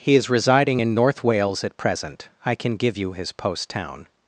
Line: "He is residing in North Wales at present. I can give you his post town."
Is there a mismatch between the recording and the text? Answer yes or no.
no